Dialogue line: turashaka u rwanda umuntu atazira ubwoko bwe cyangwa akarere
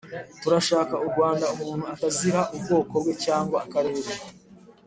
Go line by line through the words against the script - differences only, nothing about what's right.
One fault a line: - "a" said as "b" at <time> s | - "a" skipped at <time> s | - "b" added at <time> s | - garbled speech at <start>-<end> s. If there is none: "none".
none